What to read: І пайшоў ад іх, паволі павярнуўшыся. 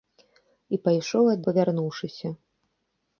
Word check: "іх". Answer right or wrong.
wrong